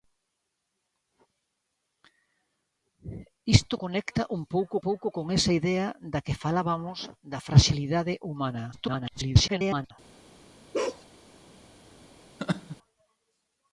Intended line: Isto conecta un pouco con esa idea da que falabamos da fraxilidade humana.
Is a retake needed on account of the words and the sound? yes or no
yes